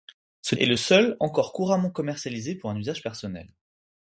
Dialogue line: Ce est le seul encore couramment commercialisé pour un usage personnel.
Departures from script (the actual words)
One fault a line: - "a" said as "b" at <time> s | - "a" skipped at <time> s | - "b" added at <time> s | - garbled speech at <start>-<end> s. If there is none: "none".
none